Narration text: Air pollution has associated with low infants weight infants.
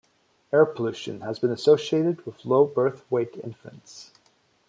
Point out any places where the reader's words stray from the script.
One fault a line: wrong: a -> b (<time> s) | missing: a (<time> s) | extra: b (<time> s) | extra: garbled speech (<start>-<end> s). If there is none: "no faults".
extra: been (1.4 s)
wrong: infants -> birth (2.6 s)